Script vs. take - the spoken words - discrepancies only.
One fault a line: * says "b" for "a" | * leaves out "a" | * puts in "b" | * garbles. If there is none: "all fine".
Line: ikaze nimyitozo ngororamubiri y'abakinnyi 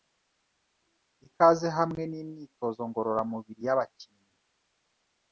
* puts in "hamwe"